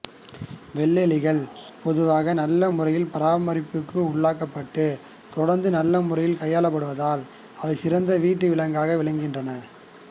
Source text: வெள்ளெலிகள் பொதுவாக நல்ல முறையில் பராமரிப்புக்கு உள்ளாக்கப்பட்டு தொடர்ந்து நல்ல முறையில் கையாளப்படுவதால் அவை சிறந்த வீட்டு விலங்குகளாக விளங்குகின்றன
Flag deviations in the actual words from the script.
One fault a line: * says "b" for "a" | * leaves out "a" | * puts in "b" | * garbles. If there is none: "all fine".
all fine